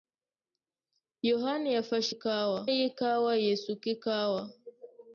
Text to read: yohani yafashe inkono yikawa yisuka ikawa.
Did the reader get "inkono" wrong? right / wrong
wrong